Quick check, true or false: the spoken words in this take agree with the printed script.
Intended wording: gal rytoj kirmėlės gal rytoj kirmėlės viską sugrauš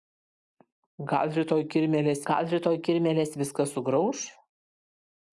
true